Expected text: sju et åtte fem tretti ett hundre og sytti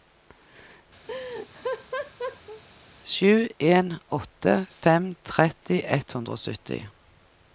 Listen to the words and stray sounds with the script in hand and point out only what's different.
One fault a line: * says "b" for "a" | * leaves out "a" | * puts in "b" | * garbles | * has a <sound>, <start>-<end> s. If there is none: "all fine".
* has a laugh, 1.1-2.6 s
* says "en" for "et"